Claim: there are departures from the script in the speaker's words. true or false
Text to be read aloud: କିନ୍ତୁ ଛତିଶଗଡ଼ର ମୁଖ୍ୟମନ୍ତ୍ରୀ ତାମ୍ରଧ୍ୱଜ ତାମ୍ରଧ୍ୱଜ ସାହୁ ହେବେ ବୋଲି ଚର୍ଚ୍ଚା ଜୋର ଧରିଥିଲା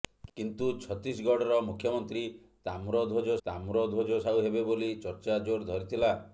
false